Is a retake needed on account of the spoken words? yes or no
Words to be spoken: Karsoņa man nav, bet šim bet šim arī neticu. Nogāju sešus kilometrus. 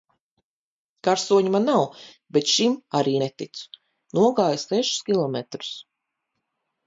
yes